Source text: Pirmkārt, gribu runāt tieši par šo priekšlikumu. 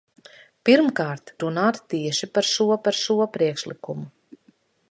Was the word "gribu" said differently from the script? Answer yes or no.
yes